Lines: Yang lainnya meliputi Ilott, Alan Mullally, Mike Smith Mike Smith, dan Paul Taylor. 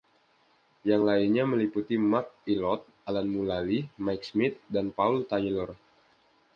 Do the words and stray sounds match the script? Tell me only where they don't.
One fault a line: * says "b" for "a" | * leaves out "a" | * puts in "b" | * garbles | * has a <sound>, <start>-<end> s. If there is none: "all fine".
* puts in "Mark"
* leaves out "Mike Smith"